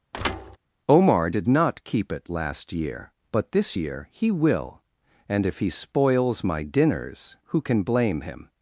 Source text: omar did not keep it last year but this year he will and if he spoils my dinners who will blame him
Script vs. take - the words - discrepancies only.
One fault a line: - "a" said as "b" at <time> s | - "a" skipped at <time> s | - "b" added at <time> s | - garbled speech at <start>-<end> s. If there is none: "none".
- "will" said as "can" at 7.6 s